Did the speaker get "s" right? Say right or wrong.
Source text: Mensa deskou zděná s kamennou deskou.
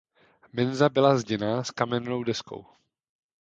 right